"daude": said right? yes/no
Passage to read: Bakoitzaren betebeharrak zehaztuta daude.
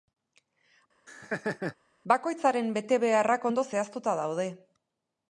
yes